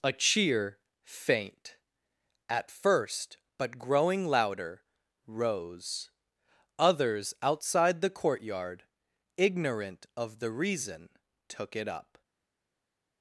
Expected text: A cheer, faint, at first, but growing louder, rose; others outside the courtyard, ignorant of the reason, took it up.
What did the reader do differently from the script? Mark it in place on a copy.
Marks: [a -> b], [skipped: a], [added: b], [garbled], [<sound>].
A cheer, faint, at first, but growing louder, rose; others outside the courtyard, ignorant of the reason, took it up.